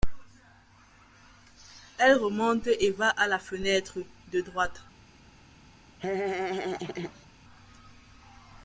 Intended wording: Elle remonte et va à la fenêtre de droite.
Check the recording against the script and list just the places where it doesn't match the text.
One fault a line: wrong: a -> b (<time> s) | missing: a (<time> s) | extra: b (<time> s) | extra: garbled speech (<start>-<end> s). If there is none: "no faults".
no faults